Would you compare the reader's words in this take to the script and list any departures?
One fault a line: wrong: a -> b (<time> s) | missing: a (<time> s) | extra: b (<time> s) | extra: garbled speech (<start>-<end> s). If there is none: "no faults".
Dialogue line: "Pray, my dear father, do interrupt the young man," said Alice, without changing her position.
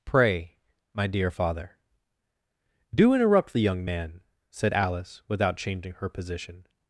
no faults